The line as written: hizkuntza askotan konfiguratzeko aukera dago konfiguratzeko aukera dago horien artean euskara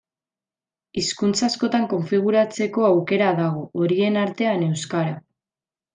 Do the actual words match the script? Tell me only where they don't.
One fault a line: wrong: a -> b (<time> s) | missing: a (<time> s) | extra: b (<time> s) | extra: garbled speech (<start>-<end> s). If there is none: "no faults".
missing: konfiguratzeko aukera dago (3.7 s)